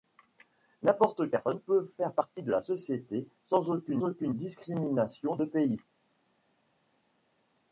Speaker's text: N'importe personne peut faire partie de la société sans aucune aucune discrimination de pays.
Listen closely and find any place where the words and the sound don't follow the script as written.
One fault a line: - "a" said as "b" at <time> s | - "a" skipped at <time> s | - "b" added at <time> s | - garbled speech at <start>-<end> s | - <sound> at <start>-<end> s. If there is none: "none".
none